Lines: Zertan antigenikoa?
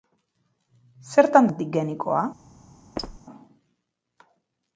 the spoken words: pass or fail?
pass